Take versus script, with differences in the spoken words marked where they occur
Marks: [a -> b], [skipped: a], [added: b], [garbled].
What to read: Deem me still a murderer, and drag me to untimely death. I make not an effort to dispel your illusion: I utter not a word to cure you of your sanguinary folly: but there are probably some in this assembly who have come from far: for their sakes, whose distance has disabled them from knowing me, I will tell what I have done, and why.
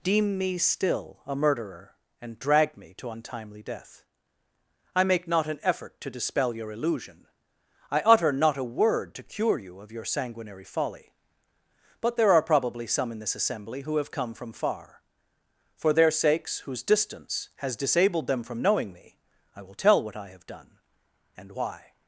Deem me still a murderer, and drag me to untimely death. I make not an effort to dispel your illusion: I utter not a word to cure you of your sanguinary folly: but there are probably some in this assembly who have come from far: for their sakes, whose distance has disabled them from knowing me, I will tell what I have done, and why.